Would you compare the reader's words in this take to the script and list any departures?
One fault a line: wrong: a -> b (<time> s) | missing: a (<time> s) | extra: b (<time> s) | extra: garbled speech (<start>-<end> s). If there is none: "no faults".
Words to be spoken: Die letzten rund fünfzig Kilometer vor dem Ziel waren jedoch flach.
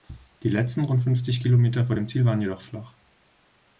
no faults